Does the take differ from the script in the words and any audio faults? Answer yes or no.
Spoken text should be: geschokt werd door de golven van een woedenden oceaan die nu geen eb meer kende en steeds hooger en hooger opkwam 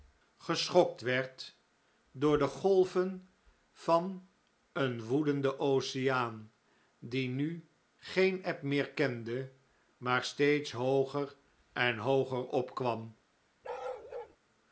yes